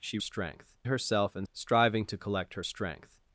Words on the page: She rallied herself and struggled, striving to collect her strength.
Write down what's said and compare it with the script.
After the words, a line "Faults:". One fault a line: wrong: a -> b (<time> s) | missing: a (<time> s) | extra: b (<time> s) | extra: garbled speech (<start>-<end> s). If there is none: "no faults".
She strength herself and striving to collect her strength.
Faults:
wrong: rallied -> strength (0.2 s)
missing: struggled (1.5 s)